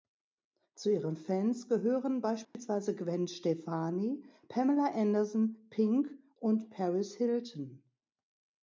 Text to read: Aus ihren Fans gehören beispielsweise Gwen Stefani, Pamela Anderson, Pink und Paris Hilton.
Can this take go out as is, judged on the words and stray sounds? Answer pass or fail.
fail